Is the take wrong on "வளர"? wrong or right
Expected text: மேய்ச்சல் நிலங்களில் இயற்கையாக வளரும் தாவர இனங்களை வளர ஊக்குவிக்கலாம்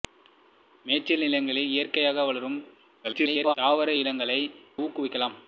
wrong